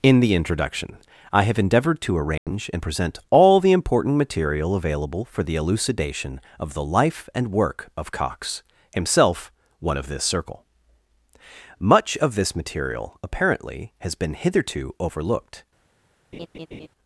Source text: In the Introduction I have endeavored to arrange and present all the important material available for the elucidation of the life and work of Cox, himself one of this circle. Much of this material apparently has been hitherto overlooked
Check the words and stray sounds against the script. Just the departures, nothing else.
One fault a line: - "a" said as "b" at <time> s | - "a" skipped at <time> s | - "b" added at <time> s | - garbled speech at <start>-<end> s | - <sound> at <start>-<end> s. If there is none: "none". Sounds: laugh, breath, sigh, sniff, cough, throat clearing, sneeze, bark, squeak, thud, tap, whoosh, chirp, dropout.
- dropout at 2.4-2.5 s
- laugh at 16.3-16.9 s